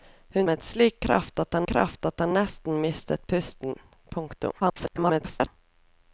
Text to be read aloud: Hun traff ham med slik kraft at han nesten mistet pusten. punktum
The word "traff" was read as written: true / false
false